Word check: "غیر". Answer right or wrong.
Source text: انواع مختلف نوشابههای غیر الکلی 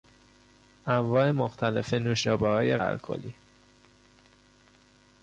wrong